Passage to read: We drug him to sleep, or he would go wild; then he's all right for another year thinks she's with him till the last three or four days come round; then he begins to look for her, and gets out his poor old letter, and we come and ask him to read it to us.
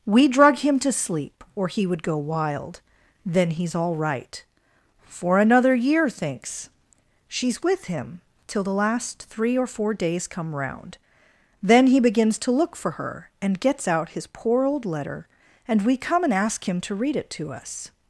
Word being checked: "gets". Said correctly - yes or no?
yes